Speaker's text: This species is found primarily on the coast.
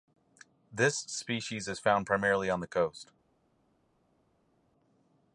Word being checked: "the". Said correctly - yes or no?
yes